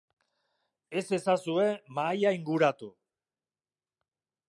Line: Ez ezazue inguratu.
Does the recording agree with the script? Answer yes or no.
no